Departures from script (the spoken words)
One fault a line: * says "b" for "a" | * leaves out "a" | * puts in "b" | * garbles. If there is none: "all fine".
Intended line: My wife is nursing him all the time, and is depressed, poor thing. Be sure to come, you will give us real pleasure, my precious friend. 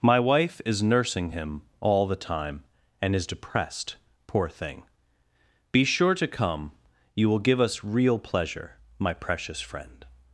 all fine